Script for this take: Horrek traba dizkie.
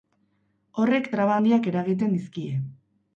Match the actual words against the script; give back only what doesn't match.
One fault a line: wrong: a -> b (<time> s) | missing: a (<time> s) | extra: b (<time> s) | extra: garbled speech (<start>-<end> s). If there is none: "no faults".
extra: handiak eragiten (1.4 s)